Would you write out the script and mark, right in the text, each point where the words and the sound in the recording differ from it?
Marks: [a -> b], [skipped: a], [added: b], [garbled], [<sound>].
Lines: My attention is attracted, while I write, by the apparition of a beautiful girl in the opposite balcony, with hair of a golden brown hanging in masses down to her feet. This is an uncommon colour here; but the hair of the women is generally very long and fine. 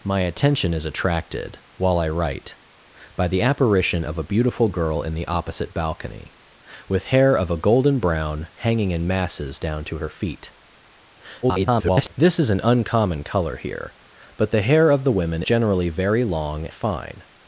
My attention is attracted, while I write, by the apparition of a beautiful girl in the opposite balcony, with hair of a golden brown hanging in masses down to her feet. [garbled] This is an uncommon colour here; but the hair of the women [skipped: is] generally very long [skipped: and] fine.